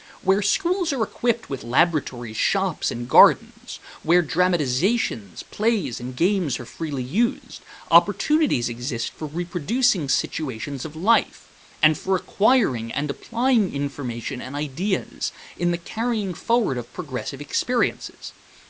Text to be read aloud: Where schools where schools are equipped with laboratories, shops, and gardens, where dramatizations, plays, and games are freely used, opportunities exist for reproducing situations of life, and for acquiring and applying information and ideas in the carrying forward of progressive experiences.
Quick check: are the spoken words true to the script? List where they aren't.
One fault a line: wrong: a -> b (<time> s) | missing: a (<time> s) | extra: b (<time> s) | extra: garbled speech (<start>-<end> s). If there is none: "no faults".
missing: where schools (0.9 s)